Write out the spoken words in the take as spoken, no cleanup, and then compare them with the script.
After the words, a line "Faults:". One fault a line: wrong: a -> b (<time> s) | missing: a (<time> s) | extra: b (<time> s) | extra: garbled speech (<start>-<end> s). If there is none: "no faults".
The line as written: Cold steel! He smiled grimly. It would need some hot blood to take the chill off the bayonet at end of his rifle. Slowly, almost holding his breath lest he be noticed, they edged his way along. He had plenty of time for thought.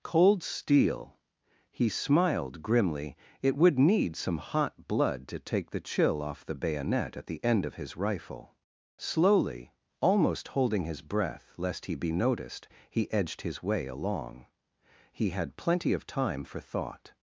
Cold steel! He smiled grimly. It would need some hot blood to take the chill off the bayonet at the end of his rifle. Slowly, almost holding his breath lest he be noticed, he edged his way along. He had plenty of time for thought.
Faults:
extra: the (7.3 s)
wrong: they -> he (12.9 s)